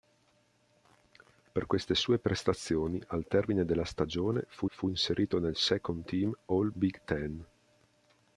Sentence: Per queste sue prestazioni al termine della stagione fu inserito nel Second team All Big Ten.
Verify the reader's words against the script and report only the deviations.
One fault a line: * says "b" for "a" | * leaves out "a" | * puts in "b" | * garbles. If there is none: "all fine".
* puts in "fu"